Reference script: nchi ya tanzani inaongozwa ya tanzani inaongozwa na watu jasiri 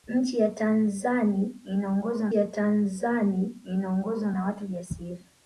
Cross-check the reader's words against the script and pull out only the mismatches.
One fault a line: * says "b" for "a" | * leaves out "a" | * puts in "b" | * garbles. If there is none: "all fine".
all fine